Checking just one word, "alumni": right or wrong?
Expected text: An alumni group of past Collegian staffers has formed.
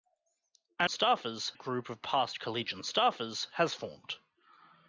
wrong